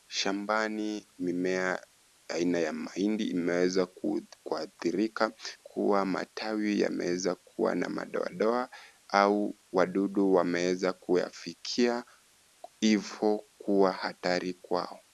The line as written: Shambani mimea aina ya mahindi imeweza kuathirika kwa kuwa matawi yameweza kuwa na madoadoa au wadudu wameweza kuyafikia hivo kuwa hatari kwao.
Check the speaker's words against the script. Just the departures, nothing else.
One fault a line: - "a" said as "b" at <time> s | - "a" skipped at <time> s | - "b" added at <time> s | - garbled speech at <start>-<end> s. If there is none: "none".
- "kwa" skipped at 5.3 s